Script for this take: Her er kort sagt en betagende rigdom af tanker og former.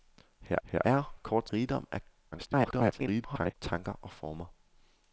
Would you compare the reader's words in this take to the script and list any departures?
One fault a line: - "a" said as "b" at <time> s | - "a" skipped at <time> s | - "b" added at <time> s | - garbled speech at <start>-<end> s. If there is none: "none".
- "her" added at 0.6 s
- "sagt en betagende" skipped at 1.5 s
- garbled speech at 2.3-3.5 s